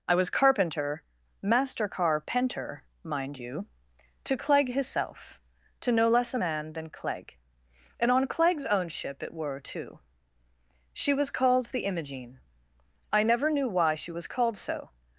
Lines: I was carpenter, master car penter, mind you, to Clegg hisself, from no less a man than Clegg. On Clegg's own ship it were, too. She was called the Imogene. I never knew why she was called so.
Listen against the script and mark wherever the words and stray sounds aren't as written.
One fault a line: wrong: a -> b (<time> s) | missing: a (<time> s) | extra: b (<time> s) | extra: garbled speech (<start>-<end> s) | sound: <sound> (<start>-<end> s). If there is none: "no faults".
wrong: from -> to (5.8 s)
extra: And (8.0 s)